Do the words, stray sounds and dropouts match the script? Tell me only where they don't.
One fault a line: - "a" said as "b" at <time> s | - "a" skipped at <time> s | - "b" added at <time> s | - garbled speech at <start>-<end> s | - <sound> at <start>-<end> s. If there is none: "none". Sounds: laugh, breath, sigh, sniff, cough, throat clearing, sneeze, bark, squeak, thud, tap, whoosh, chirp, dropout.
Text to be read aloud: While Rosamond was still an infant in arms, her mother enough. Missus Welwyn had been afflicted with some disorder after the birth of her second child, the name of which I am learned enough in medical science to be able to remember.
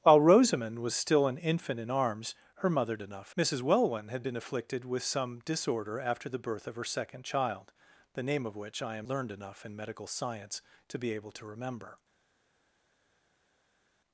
none